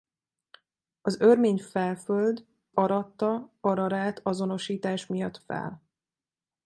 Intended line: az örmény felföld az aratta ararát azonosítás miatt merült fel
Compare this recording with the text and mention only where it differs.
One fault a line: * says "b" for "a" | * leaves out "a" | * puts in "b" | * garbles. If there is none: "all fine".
* leaves out "az"
* leaves out "merült"